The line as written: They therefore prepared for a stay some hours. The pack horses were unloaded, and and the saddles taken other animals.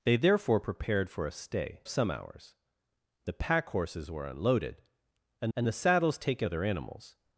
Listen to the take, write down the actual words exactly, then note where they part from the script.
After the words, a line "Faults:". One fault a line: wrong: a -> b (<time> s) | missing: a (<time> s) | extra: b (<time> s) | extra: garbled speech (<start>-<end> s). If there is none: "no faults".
They therefore prepared for a stay some hours. The pack horses were unloaded, and and the saddles taken other animals.
Faults:
no faults